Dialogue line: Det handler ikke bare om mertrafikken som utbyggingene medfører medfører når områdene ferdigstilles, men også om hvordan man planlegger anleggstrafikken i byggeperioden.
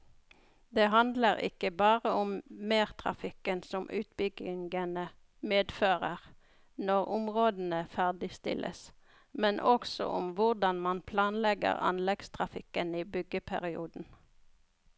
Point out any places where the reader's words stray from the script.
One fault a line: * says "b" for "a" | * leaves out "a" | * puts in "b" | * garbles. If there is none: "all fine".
* leaves out "medfører"